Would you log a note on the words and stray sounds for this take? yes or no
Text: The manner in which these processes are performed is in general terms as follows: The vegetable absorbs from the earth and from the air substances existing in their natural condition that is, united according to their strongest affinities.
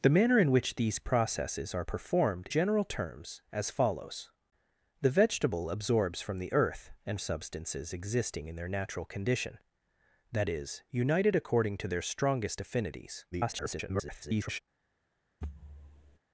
yes